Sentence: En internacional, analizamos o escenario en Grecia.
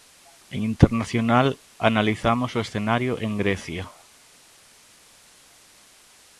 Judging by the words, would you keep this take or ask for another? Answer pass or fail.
pass